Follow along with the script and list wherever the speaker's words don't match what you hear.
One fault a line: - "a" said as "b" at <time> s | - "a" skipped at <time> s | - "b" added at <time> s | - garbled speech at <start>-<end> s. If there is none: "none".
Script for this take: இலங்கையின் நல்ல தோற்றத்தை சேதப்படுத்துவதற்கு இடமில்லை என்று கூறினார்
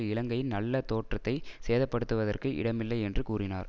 none